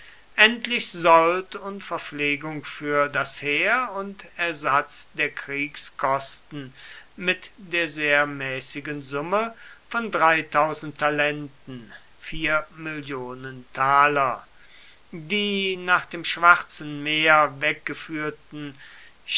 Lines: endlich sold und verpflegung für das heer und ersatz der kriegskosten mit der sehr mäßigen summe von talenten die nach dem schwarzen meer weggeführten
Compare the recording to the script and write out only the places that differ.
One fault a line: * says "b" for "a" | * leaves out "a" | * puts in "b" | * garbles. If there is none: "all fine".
all fine